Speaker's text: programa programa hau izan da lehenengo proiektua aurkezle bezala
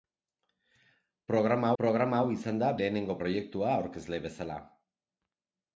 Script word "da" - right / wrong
right